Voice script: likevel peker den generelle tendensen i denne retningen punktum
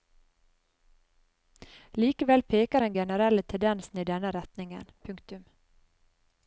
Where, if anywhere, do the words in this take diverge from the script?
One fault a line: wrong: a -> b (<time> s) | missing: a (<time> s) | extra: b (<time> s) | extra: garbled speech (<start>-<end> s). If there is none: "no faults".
no faults